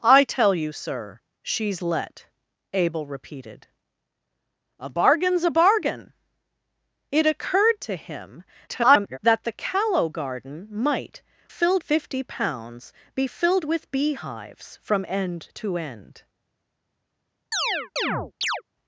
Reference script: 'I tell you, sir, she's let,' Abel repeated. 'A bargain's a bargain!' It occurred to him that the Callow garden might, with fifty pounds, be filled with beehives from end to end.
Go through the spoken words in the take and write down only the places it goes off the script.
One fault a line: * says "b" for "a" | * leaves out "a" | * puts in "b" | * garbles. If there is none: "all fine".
* garbles
* says "filled" for "with"